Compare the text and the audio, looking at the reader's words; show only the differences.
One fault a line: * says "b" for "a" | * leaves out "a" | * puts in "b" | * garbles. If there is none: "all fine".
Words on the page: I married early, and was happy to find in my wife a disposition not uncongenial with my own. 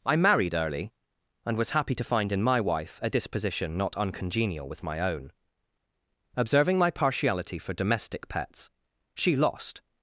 * puts in "Observing my partiality for domestic pets she lost"